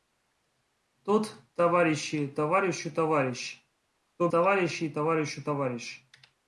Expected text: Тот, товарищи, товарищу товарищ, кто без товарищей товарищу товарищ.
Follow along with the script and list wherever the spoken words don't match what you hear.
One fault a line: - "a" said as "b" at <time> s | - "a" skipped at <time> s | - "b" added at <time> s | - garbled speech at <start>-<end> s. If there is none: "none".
- "без" skipped at 4.3 s